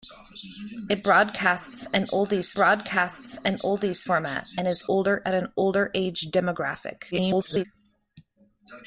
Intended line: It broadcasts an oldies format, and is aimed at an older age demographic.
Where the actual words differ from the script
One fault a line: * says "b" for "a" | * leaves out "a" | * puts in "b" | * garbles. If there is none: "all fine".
* puts in "broadcasts an oldies"
* says "older" for "aimed"
* garbles